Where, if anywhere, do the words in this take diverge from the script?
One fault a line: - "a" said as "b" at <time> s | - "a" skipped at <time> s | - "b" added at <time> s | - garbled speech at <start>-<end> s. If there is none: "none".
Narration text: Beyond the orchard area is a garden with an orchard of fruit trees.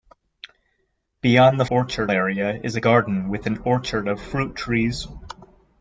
none